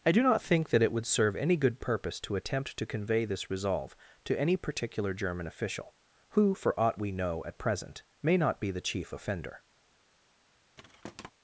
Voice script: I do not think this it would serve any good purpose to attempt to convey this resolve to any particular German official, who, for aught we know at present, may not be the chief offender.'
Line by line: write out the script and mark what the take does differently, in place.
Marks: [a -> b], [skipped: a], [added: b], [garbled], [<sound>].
I do not think [this -> that] it would serve any good purpose to attempt to convey this resolve to any particular German official, who, for aught we know at present, may not be the chief offender.' [thud]